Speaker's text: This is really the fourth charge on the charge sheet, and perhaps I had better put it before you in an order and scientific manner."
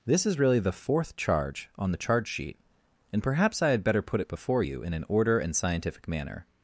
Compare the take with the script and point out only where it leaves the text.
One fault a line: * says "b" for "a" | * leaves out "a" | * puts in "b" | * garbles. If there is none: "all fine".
all fine